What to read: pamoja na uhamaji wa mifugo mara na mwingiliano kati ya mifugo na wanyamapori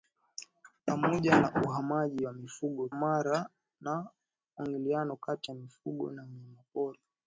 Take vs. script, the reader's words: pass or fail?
pass